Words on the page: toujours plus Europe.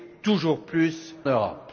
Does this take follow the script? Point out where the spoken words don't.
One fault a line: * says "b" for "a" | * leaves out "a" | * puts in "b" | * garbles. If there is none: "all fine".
all fine